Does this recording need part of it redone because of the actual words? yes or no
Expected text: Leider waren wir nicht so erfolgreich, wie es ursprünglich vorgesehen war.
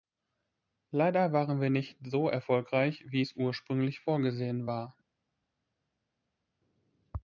no